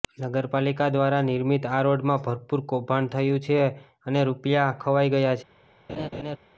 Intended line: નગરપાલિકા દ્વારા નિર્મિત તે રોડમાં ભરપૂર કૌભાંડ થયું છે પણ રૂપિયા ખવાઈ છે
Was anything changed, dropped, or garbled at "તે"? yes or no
yes